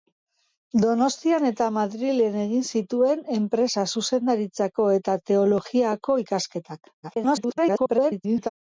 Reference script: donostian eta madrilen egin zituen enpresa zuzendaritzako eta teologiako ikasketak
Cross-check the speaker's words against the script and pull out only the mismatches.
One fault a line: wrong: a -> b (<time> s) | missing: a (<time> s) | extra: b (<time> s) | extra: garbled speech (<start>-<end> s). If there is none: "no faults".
extra: garbled speech (7.0-8.5 s)